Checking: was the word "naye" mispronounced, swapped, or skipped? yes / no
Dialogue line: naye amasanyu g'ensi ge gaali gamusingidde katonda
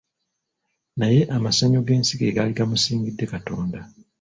no